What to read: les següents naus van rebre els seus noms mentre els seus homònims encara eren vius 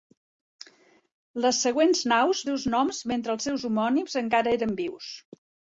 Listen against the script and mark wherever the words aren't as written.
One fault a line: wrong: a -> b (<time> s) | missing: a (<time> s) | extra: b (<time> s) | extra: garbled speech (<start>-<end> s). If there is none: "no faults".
missing: van rebre els (2.5 s)